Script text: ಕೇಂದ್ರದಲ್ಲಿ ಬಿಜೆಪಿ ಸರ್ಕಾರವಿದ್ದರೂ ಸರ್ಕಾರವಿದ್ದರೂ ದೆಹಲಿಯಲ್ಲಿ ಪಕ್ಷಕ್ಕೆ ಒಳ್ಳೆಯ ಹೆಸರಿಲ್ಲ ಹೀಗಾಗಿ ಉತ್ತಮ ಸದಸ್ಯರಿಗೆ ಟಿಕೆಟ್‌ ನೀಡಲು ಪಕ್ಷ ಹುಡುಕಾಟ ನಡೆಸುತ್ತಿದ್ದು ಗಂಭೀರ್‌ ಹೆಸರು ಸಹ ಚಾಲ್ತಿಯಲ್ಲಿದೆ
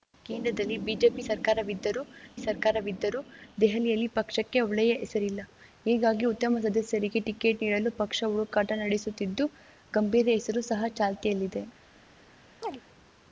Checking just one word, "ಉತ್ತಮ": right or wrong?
right